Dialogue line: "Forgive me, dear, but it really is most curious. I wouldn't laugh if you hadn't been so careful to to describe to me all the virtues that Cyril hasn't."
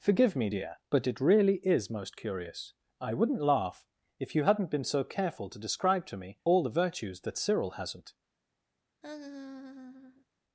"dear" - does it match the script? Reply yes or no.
yes